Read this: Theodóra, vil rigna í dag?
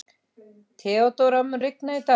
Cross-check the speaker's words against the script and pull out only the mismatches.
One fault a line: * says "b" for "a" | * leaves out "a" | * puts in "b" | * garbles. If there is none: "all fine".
* says "mun" for "vil"